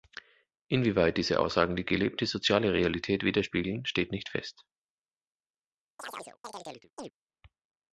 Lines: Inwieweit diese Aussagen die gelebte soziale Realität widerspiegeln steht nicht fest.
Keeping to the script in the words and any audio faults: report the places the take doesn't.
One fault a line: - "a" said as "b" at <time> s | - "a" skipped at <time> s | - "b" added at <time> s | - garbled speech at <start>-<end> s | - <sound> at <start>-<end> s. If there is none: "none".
- chirp at 6.0-7.1 s